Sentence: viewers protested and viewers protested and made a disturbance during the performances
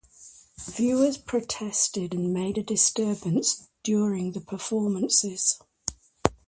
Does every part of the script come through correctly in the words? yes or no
no